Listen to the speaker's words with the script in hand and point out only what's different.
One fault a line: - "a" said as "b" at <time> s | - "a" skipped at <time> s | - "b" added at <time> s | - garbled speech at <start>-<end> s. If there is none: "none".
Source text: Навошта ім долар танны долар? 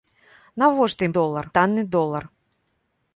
none